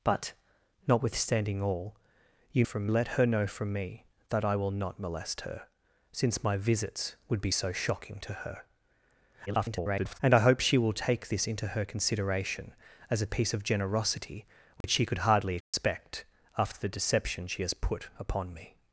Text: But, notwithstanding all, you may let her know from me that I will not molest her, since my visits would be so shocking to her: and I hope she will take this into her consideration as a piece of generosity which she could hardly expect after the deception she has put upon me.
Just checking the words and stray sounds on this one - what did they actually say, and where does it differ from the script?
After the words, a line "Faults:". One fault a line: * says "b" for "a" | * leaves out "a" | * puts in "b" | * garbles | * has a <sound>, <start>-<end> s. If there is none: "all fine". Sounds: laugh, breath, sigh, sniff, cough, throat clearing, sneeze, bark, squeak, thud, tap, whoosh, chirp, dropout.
But, notwithstanding all, you from let her know from me that I will not molest her, since my visits would be so shocking to her: [garbled] and I hope she will take this into her consideration as a piece of generosity which she could hardly expect after the deception she has put upon me.
Faults:
* says "from" for "may"
* garbles
* has a dropout, 14.8-14.8 s
* has a dropout, 15.6-15.7 s